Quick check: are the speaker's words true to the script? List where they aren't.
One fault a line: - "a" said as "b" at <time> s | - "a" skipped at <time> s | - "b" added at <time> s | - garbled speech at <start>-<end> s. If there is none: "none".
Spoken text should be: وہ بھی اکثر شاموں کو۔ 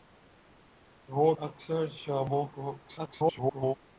- "بھی" skipped at 1.3 s
- garbled speech at 2.8-3.8 s